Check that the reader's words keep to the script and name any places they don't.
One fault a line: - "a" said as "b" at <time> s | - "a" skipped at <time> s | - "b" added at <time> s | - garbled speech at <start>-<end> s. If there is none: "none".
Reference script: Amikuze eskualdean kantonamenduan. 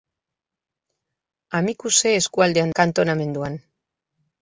none